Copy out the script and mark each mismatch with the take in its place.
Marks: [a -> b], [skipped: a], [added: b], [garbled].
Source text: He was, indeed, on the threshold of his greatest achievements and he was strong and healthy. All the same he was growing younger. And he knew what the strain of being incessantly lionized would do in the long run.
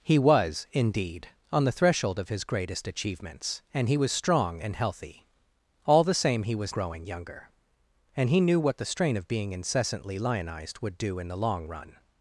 He was, indeed, on the threshold of his greatest achievements and he was strong and healthy. All the same he was growing younger. And he knew what the strain of being incessantly lionized would do in the long run.